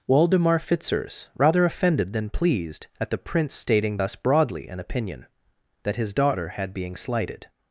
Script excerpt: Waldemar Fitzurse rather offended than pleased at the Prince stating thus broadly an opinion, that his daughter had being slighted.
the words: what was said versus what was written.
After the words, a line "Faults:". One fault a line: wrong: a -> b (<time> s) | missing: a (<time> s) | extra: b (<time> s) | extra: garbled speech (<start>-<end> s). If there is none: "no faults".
Waldemar Fitzurse rather offended than pleased at the Prince stating thus broadly an opinion, that his daughter had being slighted.
Faults:
no faults